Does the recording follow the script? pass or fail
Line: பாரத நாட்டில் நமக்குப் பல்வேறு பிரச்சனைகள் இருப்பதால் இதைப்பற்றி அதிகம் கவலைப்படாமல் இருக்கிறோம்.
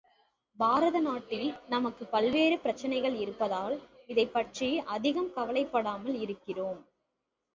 pass